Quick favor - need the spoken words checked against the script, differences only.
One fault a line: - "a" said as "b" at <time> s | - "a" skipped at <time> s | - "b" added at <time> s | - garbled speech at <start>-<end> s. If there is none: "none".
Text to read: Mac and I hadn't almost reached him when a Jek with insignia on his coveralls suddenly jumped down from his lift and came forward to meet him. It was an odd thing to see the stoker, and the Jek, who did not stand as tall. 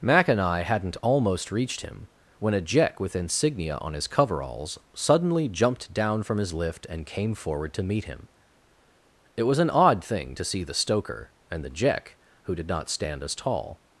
none